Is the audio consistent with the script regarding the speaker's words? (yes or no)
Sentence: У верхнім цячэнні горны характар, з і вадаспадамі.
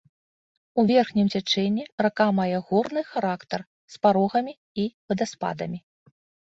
no